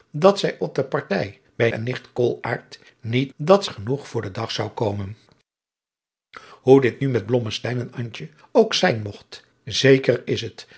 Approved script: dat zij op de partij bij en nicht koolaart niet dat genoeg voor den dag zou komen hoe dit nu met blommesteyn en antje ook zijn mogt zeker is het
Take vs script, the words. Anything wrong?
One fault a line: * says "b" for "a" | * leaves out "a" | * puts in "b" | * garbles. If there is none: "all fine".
all fine